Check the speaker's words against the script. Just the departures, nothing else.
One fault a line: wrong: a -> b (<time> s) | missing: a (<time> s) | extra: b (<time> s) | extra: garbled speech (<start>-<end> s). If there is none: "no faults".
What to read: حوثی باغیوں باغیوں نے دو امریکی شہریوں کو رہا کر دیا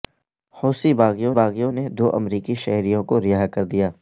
no faults